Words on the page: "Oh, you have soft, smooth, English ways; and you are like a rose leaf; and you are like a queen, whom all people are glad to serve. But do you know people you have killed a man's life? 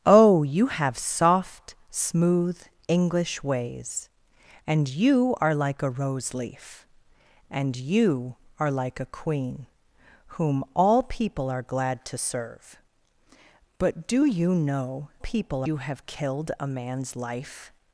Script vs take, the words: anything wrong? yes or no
no